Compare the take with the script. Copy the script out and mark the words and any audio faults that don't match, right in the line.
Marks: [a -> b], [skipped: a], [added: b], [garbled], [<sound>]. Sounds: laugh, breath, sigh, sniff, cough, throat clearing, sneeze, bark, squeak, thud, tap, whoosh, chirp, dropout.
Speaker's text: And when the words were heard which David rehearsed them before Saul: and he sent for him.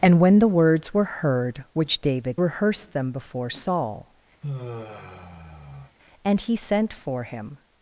And when the words were heard which David rehearsed them before Saul: [sigh] and he sent for him.